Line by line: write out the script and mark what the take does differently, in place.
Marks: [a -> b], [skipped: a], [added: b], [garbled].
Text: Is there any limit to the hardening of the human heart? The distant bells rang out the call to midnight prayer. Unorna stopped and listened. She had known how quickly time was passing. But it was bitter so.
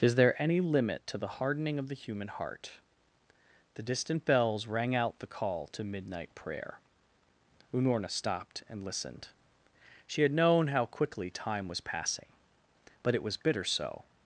Is there any limit to the hardening of the human heart? The distant bells rang out the call to midnight prayer. Unorna stopped and listened. She had known how quickly time was passing. But it was bitter so.